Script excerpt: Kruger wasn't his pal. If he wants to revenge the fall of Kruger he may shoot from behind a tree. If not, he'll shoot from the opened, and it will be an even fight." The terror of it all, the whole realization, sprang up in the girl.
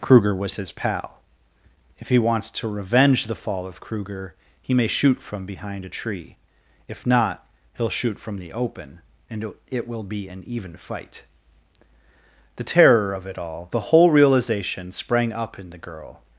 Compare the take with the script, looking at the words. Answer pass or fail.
fail